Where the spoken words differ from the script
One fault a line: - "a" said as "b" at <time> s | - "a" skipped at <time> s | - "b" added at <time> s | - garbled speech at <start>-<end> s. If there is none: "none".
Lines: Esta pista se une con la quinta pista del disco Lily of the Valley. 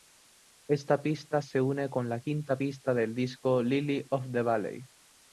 none